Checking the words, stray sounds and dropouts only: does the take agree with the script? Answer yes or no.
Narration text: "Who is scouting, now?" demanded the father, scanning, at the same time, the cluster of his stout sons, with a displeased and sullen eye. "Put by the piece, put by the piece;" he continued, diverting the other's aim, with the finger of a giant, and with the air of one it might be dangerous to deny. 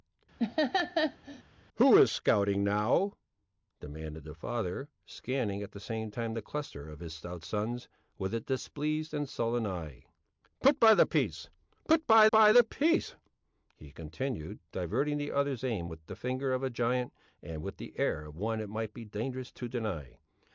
no